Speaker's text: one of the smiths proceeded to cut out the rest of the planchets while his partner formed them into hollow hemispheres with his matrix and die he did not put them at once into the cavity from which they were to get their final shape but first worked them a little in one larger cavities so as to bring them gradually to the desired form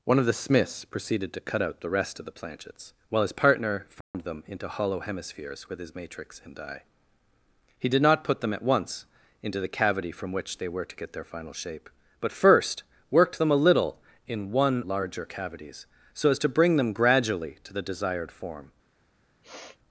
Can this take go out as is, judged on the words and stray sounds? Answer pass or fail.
fail